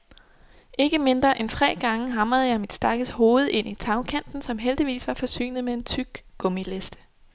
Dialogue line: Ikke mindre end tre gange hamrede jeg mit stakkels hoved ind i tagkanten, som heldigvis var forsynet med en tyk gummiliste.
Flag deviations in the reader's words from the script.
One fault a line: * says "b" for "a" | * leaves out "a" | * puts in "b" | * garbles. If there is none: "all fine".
all fine